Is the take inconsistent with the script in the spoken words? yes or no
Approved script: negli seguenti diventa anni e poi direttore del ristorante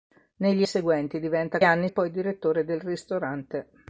no